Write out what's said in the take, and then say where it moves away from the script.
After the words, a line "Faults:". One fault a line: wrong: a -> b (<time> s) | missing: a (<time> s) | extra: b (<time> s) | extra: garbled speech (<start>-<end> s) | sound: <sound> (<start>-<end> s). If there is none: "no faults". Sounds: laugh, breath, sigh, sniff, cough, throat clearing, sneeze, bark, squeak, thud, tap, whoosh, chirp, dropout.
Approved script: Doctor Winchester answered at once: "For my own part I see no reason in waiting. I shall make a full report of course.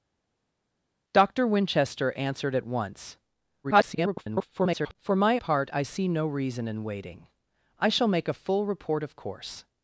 Doctor Winchester answered at once: [garbled] "For my part I see no reason in waiting. I shall make a full report of course.
Faults:
extra: garbled speech (3.6-5.0 s)
missing: own (5.4 s)